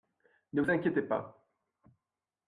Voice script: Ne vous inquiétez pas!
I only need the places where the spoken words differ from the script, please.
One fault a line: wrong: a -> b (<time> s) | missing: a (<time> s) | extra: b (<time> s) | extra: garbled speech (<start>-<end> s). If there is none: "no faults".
no faults